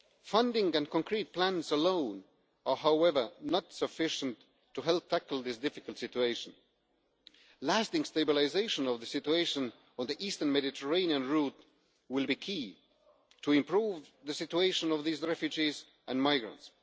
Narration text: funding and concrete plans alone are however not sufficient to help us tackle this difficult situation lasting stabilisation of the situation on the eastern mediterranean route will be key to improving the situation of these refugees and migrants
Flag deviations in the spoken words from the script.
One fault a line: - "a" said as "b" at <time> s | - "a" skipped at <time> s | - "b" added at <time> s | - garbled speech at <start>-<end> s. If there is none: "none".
- "us" skipped at 5.1 s